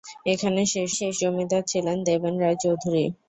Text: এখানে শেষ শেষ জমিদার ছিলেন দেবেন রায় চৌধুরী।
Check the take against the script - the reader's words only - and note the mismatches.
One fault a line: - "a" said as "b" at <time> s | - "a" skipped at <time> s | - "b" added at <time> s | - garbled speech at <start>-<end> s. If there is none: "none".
none